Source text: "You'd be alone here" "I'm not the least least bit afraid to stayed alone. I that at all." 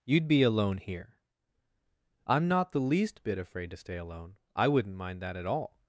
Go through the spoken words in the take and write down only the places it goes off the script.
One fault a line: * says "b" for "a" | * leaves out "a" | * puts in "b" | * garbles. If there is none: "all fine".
* leaves out "least"
* says "stay" for "stayed"
* puts in "wouldn't mind"